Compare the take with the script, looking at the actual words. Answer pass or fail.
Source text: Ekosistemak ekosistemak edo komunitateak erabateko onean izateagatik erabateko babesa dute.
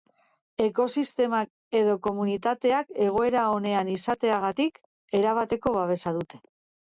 fail